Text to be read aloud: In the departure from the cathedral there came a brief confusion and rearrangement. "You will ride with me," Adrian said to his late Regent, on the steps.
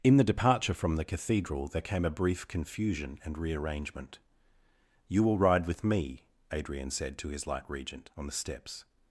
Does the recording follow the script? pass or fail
fail